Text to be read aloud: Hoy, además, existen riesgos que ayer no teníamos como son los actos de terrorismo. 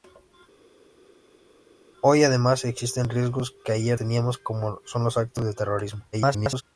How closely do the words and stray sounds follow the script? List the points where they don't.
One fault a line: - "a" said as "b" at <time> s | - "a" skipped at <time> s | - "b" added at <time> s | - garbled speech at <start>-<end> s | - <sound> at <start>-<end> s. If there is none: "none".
- "no" skipped at 4.0 s
- garbled speech at 6.1-6.6 s